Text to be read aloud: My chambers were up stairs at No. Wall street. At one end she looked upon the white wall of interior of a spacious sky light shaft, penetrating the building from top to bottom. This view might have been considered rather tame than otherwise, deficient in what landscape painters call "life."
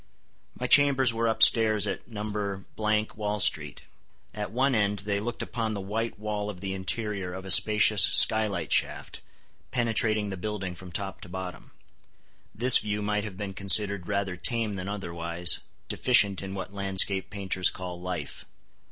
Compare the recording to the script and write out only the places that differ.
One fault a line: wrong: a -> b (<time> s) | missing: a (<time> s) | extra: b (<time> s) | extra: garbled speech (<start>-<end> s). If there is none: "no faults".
wrong: she -> they (5.0 s)
extra: the (6.6 s)